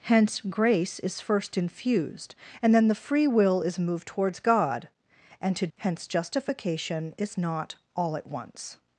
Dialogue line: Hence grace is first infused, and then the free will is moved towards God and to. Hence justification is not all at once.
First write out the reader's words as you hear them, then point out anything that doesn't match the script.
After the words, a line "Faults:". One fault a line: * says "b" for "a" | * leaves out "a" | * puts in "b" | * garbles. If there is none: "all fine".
Hence grace is first infused, and then the free will is moved towards God and to. Hence justification is not all at once.
Faults:
all fine